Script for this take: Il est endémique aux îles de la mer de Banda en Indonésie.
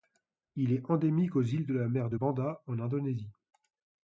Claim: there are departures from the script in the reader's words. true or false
false